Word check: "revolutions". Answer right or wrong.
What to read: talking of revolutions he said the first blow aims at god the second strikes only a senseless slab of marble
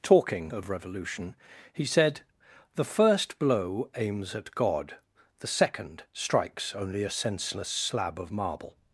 wrong